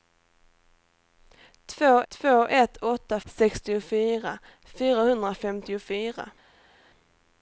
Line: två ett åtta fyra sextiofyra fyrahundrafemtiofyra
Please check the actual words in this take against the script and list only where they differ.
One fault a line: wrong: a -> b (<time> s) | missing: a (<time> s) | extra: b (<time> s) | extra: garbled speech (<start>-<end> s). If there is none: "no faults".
extra: två (2.1 s)
missing: fyra (3.2 s)